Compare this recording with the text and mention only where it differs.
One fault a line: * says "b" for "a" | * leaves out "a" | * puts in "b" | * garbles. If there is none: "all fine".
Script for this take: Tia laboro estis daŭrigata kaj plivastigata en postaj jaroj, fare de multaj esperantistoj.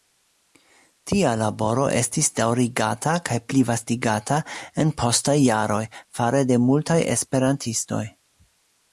all fine